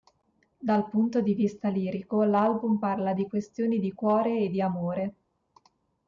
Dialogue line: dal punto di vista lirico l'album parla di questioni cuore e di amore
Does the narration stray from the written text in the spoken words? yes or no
yes